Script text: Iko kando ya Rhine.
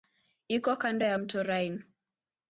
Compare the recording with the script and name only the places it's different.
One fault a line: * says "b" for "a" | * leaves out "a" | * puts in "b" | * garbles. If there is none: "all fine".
* puts in "mto"